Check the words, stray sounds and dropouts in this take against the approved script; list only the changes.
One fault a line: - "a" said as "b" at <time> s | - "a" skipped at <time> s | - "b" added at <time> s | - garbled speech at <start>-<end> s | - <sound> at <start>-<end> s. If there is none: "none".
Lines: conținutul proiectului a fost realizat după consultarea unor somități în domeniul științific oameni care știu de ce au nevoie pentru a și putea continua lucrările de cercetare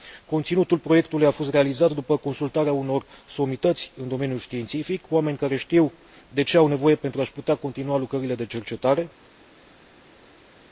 none